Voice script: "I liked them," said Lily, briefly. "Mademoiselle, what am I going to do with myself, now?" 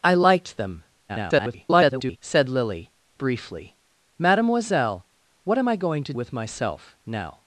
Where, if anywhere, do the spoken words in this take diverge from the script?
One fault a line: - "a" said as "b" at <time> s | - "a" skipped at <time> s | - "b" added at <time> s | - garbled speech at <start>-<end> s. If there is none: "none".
- garbled speech at 1.1-2.2 s
- "do" skipped at 6.1 s